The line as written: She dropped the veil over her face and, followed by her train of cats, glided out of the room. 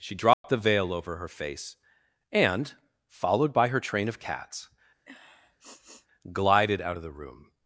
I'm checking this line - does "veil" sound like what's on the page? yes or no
yes